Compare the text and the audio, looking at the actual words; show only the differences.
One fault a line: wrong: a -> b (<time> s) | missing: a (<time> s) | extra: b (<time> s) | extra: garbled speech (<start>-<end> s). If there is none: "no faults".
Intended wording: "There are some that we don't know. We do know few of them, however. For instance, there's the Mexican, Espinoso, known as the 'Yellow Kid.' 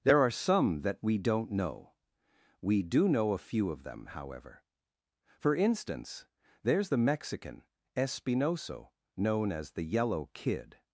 extra: a (3.3 s)